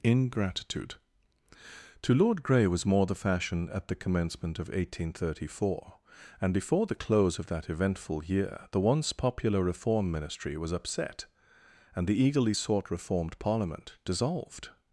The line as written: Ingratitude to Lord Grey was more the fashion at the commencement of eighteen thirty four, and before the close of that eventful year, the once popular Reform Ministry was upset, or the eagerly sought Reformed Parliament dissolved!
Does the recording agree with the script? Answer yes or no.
no